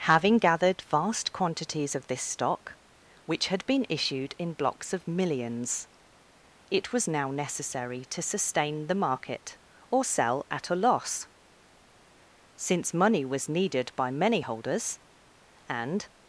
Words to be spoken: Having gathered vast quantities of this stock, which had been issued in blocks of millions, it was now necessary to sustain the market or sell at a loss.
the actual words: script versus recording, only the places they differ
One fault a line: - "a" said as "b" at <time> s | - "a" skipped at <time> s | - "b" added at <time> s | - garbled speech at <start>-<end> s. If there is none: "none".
- "Since money was needed by many holders and" added at 12.6 s